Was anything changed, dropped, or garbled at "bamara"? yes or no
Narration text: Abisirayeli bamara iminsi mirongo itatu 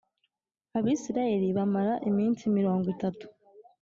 no